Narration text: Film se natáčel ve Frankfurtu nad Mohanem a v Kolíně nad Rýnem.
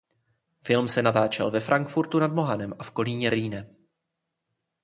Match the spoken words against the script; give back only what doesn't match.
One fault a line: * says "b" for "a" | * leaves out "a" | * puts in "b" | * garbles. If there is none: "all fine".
* leaves out "nad"